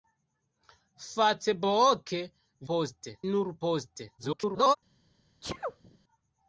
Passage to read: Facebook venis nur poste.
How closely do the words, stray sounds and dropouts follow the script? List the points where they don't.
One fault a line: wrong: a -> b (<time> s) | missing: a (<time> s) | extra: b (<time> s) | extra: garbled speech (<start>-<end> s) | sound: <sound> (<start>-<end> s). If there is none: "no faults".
wrong: venis -> poste (2.7 s)
extra: garbled speech (4.2-4.8 s)
sound: sneeze (5.4-6.0 s)